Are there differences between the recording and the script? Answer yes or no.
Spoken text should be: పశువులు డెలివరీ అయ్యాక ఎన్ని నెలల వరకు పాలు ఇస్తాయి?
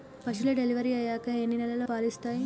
yes